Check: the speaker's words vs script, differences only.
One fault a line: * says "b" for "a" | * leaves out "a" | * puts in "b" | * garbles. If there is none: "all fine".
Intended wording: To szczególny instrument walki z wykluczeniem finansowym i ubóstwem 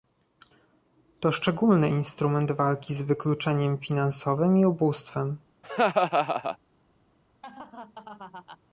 all fine